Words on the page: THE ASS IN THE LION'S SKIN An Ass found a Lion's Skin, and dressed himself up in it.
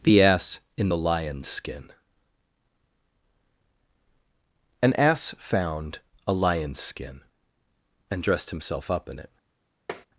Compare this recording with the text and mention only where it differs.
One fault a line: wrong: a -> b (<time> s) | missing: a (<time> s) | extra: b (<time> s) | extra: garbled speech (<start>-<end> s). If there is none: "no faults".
no faults